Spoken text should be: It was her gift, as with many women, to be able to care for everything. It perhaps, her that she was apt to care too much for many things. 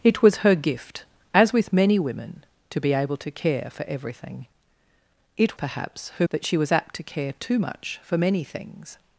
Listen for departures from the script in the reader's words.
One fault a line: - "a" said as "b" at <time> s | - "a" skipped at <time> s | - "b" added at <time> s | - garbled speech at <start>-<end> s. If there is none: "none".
none